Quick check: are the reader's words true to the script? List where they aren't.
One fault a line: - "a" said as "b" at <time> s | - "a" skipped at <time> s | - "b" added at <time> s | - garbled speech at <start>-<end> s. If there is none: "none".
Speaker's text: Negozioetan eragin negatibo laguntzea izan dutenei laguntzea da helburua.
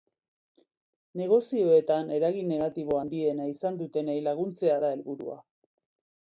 - "laguntzea" said as "handiena" at 3.0 s